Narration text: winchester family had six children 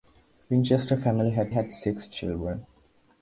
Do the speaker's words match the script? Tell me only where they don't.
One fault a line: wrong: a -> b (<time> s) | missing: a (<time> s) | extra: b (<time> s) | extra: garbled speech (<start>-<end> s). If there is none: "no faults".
extra: had (1.5 s)